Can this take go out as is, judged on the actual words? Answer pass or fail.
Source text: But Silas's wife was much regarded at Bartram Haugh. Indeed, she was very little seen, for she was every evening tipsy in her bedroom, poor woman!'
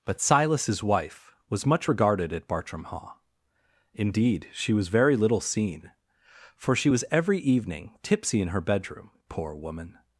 pass